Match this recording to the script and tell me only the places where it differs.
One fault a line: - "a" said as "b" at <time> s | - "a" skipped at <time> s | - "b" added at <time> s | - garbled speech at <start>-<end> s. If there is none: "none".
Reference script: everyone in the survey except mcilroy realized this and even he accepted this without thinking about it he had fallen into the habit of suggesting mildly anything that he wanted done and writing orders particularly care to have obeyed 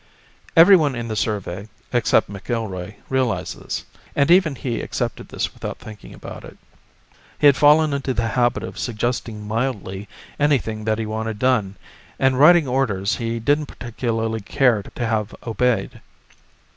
- "he didn't" added at 13.2 s